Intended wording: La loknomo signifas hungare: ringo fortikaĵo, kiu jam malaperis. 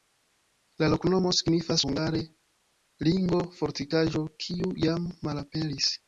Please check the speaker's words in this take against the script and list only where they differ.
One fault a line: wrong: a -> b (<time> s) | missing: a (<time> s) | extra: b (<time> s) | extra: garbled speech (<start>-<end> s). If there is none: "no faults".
no faults